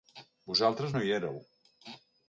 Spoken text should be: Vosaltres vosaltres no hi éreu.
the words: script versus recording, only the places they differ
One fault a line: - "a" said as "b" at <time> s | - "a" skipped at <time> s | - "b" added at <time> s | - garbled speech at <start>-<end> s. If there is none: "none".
- "vosaltres" skipped at 0.9 s